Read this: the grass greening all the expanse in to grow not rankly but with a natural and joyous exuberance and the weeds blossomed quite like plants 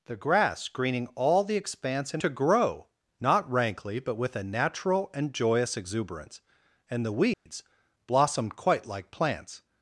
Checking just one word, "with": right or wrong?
right